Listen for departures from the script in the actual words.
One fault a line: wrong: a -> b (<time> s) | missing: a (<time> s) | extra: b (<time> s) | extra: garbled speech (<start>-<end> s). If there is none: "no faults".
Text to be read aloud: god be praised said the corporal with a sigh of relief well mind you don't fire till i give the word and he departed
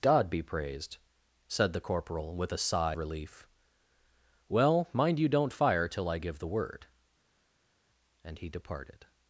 missing: of (3.0 s)